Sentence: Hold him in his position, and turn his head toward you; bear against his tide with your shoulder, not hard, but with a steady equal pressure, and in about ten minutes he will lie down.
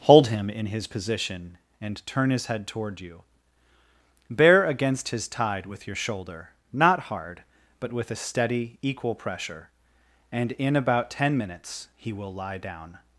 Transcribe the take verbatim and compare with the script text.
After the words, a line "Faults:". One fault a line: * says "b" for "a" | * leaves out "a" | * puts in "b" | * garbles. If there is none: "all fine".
Hold him in his position, and turn his head toward you; bear against his tide with your shoulder, not hard, but with a steady equal pressure, and in about ten minutes he will lie down.
Faults:
all fine